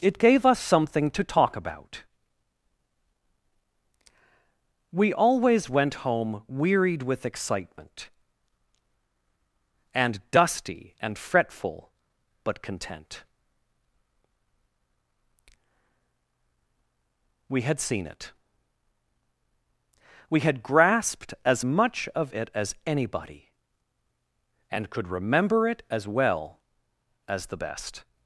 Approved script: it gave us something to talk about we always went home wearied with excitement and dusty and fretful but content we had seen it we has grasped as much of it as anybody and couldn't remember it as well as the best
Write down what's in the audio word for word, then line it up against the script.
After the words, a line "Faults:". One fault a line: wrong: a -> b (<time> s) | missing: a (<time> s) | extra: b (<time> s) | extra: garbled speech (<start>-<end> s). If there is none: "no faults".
it gave us something to talk about we always went home wearied with excitement and dusty and fretful but content we had seen it we had grasped as much of it as anybody and could remember it as well as the best
Faults:
wrong: has -> had (20.4 s)
wrong: couldn't -> could (24.9 s)